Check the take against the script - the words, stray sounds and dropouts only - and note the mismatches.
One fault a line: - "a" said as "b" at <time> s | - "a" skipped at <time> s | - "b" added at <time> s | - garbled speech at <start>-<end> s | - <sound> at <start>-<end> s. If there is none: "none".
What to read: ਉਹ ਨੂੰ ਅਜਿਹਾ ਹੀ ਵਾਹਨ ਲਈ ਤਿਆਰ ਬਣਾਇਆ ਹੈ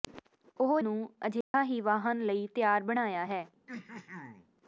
- dropout at 1.4-1.5 s
- throat clearing at 3.7-4.5 s